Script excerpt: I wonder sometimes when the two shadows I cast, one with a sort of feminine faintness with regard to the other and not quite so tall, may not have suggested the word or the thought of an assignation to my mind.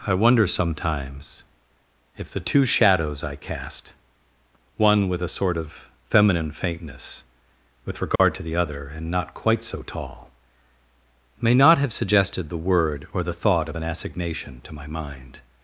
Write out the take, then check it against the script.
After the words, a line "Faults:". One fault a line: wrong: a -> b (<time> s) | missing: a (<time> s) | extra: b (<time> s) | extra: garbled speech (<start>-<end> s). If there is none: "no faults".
I wonder sometimes if the two shadows I cast, one with a sort of feminine faintness with regard to the other and not quite so tall, may not have suggested the word or the thought of an assignation to my mind.
Faults:
wrong: when -> if (2.2 s)